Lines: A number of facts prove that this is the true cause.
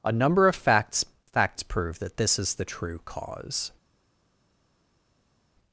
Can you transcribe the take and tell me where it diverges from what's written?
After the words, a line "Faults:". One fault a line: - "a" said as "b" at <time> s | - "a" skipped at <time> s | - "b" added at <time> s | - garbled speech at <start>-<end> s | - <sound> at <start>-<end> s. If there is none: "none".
A number of facts facts prove that this is the true cause.
Faults:
- "facts" added at 1.3 s